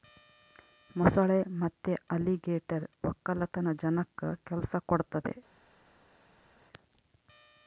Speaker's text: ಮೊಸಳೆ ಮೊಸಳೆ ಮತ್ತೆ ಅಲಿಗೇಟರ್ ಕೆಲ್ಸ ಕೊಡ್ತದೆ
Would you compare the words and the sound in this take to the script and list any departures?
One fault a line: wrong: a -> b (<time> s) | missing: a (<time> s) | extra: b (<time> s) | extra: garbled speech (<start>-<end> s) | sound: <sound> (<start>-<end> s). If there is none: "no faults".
missing: ಮೊಸಳೆ (1.4 s)
extra: ವಕ್ಕಲತನ ಜನಕ್ಕ (3.0 s)